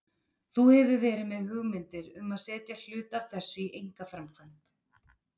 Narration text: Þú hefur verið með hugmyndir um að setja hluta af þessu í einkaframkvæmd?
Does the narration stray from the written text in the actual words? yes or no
no